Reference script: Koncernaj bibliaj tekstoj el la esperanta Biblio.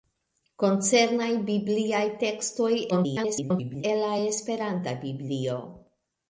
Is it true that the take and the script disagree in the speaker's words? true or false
true